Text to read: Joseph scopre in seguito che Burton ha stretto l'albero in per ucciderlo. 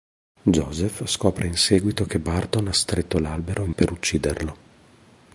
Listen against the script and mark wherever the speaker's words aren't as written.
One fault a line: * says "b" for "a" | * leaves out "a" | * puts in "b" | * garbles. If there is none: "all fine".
all fine